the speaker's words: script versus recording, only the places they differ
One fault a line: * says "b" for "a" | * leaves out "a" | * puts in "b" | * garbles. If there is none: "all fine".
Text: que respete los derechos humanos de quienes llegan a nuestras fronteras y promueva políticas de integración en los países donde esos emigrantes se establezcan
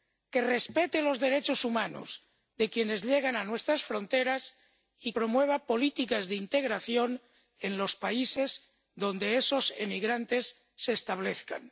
all fine